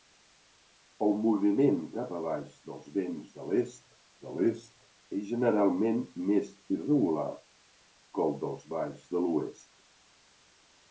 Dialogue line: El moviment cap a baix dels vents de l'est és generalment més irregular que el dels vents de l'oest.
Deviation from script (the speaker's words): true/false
true